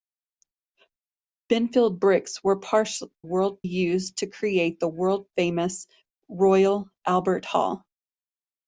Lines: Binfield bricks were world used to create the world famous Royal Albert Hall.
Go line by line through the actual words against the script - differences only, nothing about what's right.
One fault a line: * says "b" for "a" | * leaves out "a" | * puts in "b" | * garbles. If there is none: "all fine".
all fine